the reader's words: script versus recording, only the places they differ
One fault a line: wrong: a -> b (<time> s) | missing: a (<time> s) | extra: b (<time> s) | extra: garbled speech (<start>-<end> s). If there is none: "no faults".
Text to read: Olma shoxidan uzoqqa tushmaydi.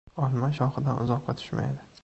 no faults